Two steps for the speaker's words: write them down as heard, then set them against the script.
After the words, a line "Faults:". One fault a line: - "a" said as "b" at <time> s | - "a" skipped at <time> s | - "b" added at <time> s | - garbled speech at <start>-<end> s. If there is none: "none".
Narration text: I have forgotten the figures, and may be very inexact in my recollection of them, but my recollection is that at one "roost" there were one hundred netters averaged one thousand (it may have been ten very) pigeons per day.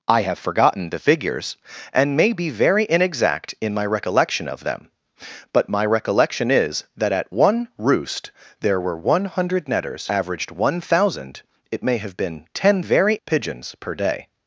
I have forgotten the figures, and may be very inexact in my recollection of them, but my recollection is that at one "roost" there were one hundred netters averaged one thousand (it may have been ten very) pigeons per day.
Faults:
none